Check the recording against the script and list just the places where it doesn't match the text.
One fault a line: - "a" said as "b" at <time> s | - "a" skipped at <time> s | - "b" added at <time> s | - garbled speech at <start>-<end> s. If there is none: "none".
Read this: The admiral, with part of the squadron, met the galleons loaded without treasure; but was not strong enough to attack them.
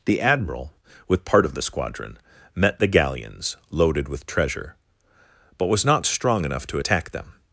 - "without" said as "with" at 4.1 s